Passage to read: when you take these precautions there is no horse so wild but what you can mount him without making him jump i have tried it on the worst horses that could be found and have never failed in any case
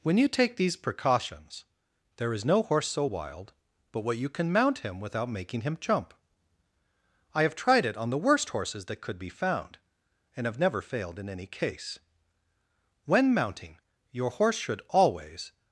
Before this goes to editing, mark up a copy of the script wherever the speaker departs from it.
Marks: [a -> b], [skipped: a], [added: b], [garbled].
when you take these precautions there is no horse so wild but what you can mount him without making him jump i have tried it on the worst horses that could be found and have never failed in any case [added: when mounting your horse should always]